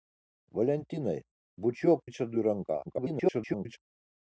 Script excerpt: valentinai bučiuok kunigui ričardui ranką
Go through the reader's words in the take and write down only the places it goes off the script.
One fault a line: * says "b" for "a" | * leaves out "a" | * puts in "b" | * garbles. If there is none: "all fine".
* leaves out "kunigui"
* garbles